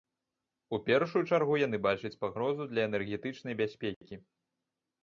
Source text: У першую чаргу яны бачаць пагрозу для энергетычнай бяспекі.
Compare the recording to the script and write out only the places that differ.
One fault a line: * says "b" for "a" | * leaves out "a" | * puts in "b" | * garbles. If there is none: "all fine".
all fine